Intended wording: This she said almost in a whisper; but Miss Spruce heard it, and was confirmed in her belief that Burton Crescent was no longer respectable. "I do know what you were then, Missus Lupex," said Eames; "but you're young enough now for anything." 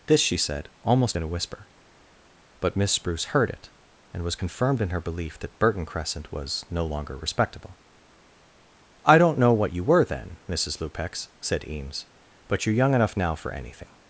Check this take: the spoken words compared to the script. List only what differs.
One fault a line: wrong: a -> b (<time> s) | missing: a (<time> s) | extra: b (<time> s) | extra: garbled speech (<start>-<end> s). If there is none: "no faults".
wrong: do -> don't (9.2 s)